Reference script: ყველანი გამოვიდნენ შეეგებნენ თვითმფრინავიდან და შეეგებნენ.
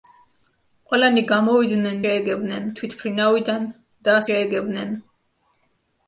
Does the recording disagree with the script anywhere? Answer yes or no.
no